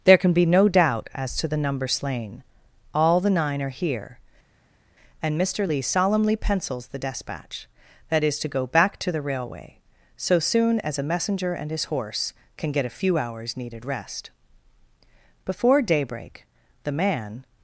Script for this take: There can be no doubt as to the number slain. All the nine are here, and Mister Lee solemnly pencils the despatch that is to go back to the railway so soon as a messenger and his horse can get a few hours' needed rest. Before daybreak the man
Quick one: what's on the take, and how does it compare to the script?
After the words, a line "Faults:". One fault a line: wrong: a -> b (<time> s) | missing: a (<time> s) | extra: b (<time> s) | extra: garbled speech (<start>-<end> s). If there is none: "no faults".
There can be no doubt as to the number slain. All the nine are here, and Mister Lee solemnly pencils the despatch that is to go back to the railway so soon as a messenger and his horse can get a few hours' needed rest. Before daybreak the man
Faults:
no faults